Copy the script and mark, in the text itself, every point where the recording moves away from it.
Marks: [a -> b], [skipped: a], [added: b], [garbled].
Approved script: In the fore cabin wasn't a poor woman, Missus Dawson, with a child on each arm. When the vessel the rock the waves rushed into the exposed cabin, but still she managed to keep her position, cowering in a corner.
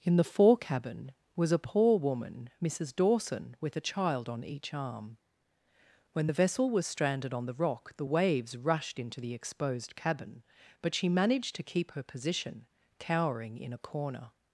In the fore cabin [wasn't -> was] a poor woman, Missus Dawson, with a child on each arm. When the vessel [added: was stranded on] the rock the waves rushed into the exposed cabin, but [skipped: still] she managed to keep her position, cowering in a corner.